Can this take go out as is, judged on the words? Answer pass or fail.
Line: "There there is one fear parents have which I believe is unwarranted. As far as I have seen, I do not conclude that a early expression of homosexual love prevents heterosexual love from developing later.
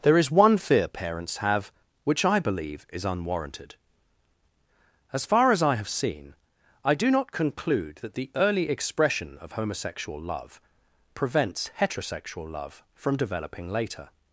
fail